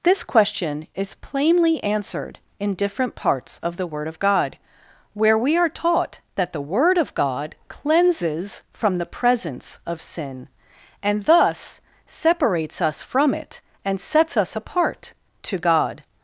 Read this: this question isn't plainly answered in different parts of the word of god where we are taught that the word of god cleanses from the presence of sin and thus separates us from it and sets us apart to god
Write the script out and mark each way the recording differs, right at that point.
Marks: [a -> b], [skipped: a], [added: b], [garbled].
this question [isn't -> is] plainly answered in different parts of the word of god where we are taught that the word of god cleanses from the presence of sin and thus separates us from it and sets us apart to god